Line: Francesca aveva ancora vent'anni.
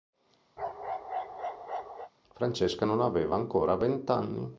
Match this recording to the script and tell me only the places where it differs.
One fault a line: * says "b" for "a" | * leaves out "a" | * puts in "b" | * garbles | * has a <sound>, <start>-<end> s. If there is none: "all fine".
* has a bark, 0.6-2.1 s
* puts in "non"